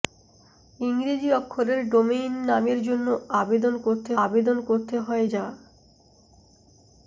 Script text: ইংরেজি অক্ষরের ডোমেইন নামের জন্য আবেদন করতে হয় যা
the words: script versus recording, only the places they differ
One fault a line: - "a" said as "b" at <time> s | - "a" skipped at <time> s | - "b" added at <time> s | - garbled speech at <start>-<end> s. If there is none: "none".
- "আবেদন করতে" added at 4.2 s